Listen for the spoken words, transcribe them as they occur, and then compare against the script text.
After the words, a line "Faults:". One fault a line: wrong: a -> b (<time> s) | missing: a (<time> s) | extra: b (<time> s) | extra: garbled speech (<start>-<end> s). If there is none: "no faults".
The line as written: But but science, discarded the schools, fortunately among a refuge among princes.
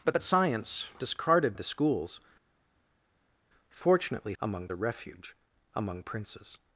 But but science, discarded the schools, fortunately among a refuge among princes.
Faults:
no faults